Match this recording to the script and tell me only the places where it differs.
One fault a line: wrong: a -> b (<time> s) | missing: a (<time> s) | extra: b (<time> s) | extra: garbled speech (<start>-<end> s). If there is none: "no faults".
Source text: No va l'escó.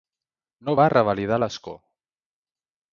extra: revalidar (0.9 s)